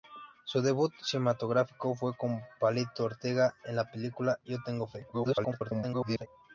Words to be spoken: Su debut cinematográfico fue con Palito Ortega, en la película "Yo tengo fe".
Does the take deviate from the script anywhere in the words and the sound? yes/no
yes